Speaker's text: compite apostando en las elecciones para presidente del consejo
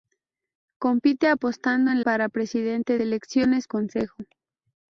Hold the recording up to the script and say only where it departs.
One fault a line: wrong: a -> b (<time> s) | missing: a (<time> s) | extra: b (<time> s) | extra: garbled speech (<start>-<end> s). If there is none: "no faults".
missing: las elecciones (2.0 s)
wrong: del -> elecciones (3.0 s)